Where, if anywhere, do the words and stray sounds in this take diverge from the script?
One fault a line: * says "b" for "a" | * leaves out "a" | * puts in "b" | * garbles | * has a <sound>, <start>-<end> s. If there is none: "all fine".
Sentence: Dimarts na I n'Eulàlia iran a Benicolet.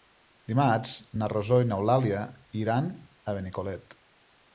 * puts in "Rosó"